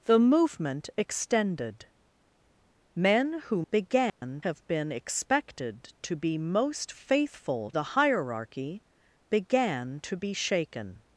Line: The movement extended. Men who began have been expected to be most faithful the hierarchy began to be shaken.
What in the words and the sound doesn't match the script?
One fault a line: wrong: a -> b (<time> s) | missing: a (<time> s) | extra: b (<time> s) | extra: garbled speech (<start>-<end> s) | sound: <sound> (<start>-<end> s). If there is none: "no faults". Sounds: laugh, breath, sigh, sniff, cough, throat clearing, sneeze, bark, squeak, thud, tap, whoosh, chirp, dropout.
sound: dropout (4.1-4.2 s)